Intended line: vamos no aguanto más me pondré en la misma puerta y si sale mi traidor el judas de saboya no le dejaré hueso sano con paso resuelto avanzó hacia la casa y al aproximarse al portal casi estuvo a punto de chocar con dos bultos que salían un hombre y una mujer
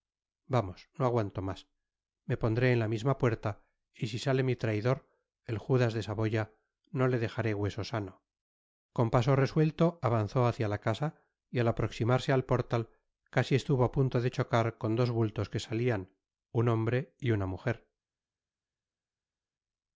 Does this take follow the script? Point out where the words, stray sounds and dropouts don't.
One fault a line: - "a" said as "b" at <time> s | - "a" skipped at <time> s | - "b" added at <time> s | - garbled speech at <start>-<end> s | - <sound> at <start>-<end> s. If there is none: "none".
none